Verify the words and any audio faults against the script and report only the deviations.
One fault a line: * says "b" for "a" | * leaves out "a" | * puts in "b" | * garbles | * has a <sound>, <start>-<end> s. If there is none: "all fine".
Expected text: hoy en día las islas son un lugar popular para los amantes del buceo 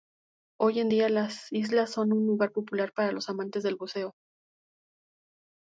all fine